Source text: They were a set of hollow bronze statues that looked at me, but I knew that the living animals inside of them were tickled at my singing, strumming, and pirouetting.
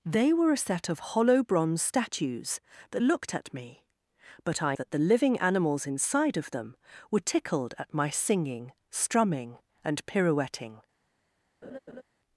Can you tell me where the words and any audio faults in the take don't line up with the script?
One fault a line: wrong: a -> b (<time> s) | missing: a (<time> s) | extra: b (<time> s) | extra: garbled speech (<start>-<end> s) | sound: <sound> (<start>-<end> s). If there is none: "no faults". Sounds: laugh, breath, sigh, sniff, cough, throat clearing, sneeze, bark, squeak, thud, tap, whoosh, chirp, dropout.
missing: knew (4.8 s)
sound: laugh (11.6-12.0 s)